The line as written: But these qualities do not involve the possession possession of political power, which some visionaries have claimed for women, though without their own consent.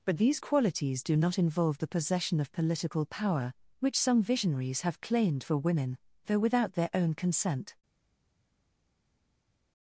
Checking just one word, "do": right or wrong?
right